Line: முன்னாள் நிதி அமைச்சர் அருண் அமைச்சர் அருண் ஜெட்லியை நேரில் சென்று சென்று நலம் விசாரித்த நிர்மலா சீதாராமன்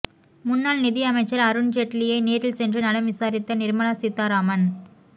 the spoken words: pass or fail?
fail